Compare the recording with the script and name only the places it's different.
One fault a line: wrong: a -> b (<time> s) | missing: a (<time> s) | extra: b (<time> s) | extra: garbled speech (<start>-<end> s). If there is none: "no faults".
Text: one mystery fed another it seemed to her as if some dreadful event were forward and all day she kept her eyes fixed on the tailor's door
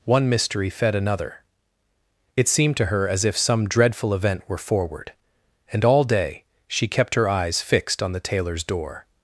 no faults